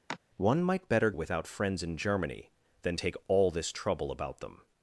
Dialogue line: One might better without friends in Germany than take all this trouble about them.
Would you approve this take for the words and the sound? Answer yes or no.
no